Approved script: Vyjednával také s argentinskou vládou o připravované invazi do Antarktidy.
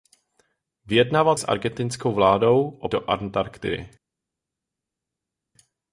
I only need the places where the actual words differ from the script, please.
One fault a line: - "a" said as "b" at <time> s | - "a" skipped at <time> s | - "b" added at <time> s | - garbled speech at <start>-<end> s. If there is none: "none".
- "také" skipped at 1.4 s
- "připravované invazi" skipped at 2.9 s